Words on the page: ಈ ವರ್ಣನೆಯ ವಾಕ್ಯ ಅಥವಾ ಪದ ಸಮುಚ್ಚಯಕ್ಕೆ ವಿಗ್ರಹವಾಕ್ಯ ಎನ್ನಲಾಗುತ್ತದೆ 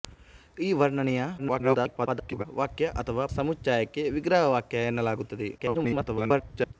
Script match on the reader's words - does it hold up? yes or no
no